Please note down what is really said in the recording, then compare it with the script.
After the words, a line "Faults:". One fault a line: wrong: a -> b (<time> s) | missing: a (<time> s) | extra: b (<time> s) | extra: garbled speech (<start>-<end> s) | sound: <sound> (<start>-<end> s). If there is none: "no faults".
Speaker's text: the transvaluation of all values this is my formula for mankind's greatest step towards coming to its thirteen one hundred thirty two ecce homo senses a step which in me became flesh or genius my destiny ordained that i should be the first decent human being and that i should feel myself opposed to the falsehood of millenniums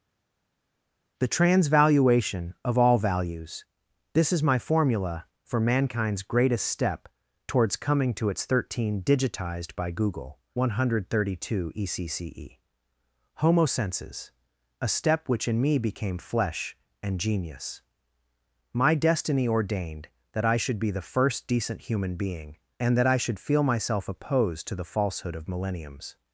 the transvaluation of all values this is my formula for mankind's greatest step towards coming to its thirteen digitized by google one hundred thirty two ecce homo senses a step which in me became flesh and genius my destiny ordained that i should be the first decent human being and that i should feel myself opposed to the falsehood of millenniums
Faults:
extra: digitized by google (9.0 s)
wrong: or -> and (17.0 s)